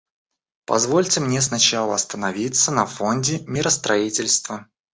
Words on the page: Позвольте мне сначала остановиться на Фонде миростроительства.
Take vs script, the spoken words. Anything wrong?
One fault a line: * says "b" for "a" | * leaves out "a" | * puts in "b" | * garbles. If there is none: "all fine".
all fine